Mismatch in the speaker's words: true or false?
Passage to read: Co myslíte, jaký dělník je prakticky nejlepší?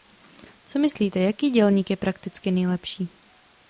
false